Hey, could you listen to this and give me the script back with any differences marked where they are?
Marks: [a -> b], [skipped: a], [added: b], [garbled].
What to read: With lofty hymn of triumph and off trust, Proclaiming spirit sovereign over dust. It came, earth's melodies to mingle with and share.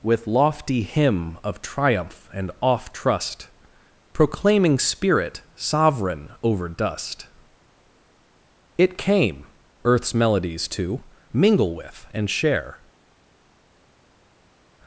With lofty hymn of triumph and off trust, Proclaiming spirit sovereign over dust. It came, earth's melodies to mingle with and share.